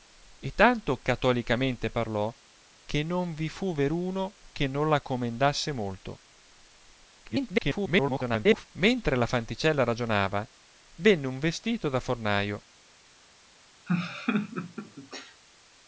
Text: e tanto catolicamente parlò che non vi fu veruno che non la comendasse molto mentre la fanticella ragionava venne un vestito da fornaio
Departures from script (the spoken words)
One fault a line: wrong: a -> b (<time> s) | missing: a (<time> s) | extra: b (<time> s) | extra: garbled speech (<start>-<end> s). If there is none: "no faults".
extra: garbled speech (7.2-8.7 s)